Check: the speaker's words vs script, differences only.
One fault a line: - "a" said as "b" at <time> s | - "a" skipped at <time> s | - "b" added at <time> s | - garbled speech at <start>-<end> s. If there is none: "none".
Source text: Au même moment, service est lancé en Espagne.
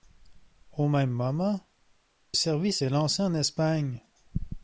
none